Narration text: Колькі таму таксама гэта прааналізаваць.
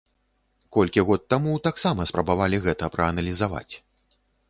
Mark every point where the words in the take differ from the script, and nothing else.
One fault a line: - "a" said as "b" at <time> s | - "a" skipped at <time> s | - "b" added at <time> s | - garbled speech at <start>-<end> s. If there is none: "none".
- "год" added at 1.1 s
- "спрабавалі" added at 2.1 s